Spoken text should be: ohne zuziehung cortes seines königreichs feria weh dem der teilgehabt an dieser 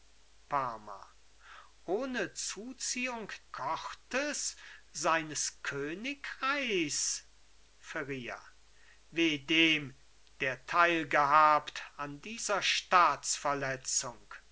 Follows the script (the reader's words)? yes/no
yes